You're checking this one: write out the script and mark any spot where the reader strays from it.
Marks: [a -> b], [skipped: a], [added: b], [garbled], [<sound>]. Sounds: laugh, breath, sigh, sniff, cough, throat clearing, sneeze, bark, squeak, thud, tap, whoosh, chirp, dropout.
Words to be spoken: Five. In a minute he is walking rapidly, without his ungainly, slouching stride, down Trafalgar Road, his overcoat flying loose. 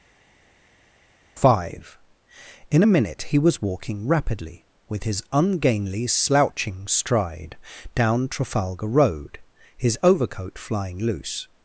Five. In a minute he [is -> was] walking rapidly, [without -> with] his ungainly, slouching stride, down Trafalgar Road, his overcoat flying loose.